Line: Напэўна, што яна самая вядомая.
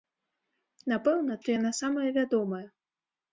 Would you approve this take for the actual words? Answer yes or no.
yes